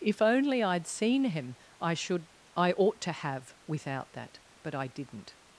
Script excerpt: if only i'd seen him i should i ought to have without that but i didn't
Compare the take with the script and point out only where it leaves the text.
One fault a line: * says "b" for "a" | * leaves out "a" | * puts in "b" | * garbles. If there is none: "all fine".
all fine